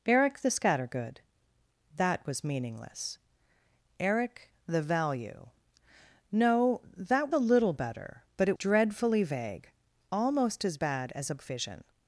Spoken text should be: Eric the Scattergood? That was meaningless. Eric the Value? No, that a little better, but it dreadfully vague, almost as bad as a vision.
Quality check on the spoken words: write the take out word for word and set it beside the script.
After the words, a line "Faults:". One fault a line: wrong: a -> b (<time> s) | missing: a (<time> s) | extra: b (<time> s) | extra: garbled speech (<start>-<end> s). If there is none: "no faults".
Eric the Scattergood? That was meaningless. Eric the Value? No, that a little better, but it dreadfully vague, almost as bad as a vision.
Faults:
no faults